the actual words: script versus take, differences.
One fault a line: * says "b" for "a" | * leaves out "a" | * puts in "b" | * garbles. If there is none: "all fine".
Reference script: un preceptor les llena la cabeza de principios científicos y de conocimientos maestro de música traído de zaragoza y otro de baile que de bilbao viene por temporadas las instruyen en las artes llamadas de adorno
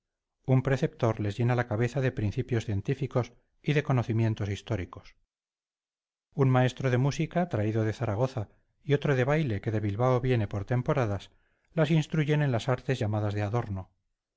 * puts in "históricos un"